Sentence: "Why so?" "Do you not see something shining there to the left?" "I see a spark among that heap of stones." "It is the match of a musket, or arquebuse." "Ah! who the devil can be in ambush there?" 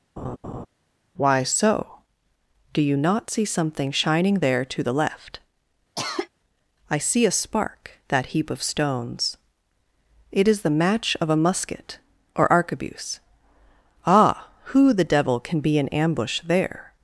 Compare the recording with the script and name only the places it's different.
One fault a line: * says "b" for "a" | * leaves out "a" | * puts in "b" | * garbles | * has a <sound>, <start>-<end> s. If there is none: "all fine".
* has a laugh, 0.2-0.7 s
* has a cough, 6.0-6.3 s
* leaves out "among"